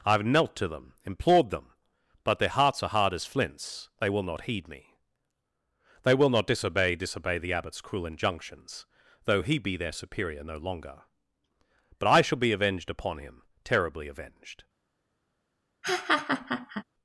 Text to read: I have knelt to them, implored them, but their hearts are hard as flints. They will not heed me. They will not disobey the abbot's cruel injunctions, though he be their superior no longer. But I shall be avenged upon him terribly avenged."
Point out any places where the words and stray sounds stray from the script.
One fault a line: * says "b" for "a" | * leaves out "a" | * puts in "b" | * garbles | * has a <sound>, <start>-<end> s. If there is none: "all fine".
* puts in "disobey"
* has a laugh, 15.8-16.8 s